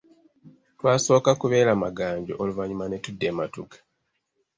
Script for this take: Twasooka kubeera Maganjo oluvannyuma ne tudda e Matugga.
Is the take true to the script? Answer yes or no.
yes